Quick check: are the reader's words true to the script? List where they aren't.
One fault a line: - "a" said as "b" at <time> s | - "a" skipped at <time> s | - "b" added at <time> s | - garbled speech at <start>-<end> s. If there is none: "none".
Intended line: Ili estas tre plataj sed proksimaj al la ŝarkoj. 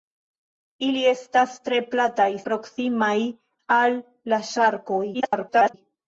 - "sed" skipped at 2.3 s
- garbled speech at 5.1-5.7 s